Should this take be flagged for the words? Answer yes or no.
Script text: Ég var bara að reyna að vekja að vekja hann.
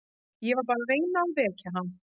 yes